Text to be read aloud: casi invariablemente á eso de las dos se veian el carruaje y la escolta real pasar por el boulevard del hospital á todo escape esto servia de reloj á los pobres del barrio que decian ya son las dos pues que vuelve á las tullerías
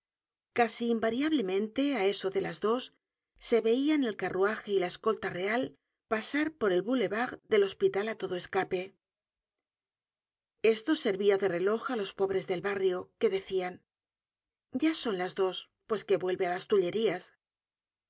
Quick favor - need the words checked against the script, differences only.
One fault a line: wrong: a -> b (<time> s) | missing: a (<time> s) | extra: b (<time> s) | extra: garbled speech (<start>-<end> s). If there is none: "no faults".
no faults